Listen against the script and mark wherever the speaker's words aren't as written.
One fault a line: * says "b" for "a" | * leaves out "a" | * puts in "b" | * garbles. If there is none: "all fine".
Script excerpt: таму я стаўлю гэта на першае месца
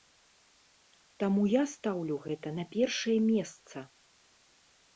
all fine